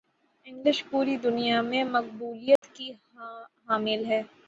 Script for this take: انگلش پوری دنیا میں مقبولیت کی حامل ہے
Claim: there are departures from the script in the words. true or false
false